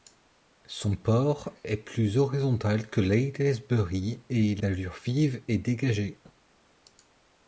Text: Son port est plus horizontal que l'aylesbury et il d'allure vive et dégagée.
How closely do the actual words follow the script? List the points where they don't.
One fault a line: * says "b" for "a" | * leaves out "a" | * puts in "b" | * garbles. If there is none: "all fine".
all fine